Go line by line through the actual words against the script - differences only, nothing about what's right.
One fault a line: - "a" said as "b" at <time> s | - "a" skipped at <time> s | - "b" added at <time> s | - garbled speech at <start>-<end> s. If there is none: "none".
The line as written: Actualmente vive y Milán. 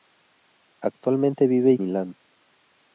none